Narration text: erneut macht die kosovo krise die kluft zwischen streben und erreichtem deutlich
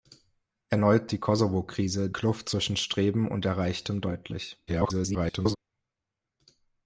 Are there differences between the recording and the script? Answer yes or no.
yes